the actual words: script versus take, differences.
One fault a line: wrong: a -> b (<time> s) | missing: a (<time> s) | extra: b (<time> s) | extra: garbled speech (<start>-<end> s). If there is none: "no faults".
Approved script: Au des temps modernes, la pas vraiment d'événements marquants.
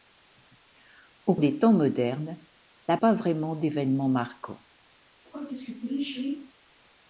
no faults